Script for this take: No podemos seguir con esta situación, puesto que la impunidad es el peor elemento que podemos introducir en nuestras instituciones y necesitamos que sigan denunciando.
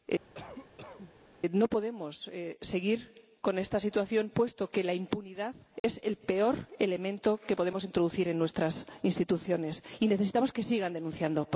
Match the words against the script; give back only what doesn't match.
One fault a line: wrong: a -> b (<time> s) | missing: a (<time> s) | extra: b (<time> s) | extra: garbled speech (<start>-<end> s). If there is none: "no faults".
no faults